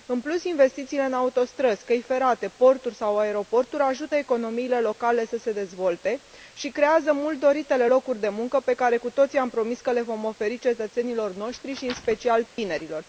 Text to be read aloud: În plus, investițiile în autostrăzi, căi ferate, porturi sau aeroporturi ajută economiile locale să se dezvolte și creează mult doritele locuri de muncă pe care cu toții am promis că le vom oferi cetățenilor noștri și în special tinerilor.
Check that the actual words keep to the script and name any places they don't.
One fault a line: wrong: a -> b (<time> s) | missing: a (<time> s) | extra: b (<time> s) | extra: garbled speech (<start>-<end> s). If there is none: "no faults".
no faults